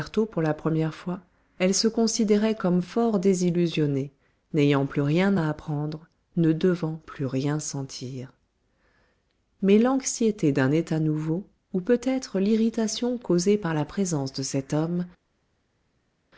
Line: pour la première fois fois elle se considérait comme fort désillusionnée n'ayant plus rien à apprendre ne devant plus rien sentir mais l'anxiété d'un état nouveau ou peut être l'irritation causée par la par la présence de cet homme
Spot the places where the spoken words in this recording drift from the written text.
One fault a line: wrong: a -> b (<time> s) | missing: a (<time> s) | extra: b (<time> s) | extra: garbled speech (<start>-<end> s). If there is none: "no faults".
missing: fois (1.2 s)
missing: par la (13.9 s)